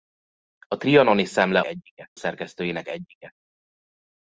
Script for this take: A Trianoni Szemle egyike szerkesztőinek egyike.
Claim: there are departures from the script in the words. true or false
false